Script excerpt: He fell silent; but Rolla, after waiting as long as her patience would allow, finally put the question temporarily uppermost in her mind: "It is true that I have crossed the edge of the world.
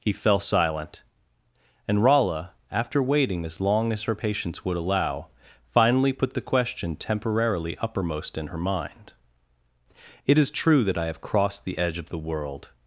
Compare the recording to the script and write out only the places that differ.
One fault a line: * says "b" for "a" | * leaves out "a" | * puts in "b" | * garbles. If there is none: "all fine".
* says "and" for "but"